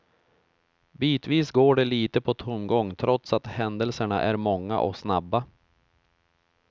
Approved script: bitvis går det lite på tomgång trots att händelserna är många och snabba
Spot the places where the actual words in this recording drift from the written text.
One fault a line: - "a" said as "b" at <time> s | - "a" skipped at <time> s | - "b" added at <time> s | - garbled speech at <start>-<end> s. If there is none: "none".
none